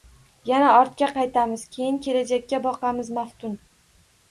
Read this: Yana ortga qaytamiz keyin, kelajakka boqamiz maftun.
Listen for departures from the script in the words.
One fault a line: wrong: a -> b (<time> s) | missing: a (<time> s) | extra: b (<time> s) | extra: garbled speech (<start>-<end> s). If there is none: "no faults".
no faults